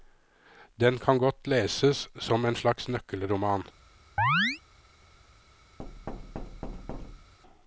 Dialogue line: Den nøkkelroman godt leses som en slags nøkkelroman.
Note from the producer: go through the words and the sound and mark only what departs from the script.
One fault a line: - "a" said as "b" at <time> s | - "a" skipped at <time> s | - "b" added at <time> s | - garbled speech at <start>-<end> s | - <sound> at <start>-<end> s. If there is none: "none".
- "nøkkelroman" said as "kan" at 1.0 s
- chirp at 4.2-4.6 s
- thud at 5.8-7.3 s